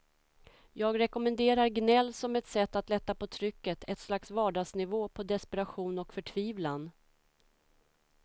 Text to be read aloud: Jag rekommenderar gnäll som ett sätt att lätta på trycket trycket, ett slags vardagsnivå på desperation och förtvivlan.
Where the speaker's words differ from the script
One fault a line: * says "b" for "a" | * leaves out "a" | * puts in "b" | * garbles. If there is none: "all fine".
* leaves out "trycket"